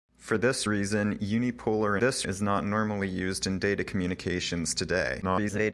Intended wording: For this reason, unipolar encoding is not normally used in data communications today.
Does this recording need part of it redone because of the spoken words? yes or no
yes